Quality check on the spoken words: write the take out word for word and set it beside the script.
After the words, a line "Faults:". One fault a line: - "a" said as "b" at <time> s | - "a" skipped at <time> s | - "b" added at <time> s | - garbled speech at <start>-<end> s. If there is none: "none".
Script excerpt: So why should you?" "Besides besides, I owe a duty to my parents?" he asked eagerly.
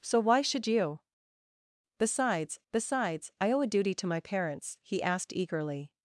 So why should you?" "Besides besides, I owe a duty to my parents?" he asked eagerly.
Faults:
none